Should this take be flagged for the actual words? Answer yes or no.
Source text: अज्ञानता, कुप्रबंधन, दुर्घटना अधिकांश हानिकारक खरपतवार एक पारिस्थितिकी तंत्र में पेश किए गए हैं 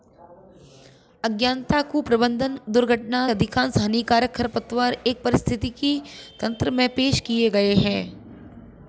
no